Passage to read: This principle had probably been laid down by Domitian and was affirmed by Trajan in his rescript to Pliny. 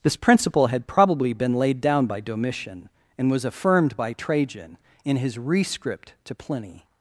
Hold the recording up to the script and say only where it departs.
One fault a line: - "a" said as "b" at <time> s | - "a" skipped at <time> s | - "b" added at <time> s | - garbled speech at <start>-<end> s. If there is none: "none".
none